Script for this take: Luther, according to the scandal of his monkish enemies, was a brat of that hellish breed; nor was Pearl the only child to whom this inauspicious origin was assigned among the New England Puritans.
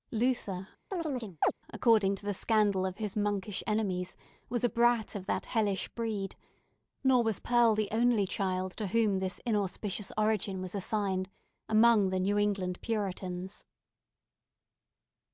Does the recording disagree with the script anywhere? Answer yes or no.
no